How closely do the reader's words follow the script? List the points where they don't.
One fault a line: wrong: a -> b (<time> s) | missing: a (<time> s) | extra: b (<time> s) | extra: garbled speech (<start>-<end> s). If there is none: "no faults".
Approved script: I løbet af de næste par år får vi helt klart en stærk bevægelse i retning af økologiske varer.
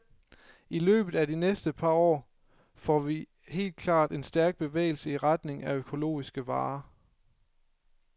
no faults